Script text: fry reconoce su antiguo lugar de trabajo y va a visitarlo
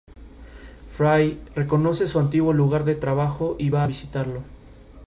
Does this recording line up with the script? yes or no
yes